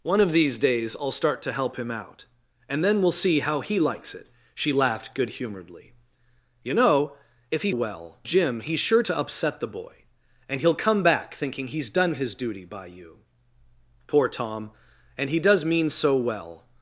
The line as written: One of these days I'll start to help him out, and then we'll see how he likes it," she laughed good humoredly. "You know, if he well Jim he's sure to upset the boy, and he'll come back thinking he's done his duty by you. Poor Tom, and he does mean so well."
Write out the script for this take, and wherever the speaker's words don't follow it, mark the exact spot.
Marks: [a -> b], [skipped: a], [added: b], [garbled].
One of these days I'll start to help him out, and then we'll see how he likes it," she laughed good humoredly. "You know, if he well Jim he's sure to upset the boy, and he'll come back thinking he's done his duty by you. Poor Tom, and he does mean so well."